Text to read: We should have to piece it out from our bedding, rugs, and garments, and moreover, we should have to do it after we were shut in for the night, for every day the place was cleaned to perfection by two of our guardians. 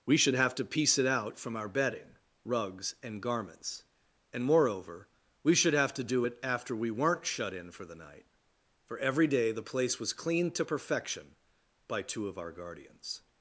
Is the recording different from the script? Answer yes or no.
yes